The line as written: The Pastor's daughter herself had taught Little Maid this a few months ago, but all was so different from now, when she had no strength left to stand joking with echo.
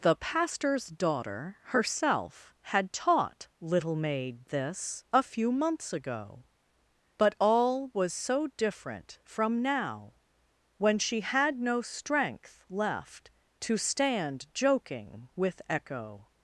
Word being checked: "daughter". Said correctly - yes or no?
yes